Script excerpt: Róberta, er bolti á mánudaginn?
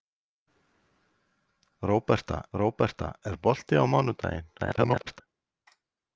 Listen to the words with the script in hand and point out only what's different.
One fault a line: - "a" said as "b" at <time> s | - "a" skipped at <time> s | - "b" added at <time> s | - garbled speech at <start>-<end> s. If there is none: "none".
- "róberta" added at 2.6 s
- garbled speech at 4.6-5.2 s